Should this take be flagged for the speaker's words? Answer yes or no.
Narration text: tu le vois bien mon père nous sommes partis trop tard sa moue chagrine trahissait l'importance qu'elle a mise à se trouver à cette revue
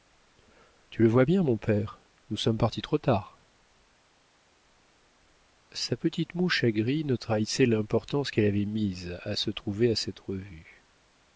yes